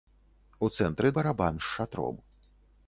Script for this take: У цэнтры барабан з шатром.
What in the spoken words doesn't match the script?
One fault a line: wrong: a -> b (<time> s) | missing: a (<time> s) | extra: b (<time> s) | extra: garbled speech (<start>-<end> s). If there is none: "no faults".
no faults